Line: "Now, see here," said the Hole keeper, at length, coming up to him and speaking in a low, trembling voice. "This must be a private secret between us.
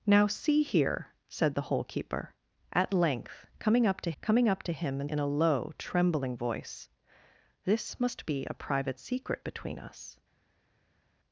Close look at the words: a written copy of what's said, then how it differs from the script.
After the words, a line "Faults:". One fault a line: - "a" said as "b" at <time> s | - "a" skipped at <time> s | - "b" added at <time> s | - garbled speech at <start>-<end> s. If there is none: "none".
"Now, see here," said the Hole keeper, at length, coming up to coming up to him and in a low, trembling voice. "This must be a private secret between us.
Faults:
- "coming up to" added at 4.2 s
- "speaking" skipped at 5.1 s